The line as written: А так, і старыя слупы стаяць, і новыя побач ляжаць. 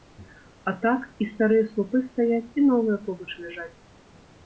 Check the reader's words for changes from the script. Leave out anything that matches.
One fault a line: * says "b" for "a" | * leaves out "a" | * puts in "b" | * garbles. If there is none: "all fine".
all fine